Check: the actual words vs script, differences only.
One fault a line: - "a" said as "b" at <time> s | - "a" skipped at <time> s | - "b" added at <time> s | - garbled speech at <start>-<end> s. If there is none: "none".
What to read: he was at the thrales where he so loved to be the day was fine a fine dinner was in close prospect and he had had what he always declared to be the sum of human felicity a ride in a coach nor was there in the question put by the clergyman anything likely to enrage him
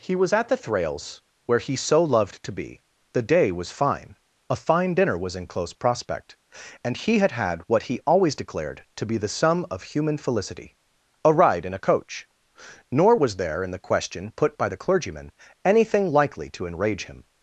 none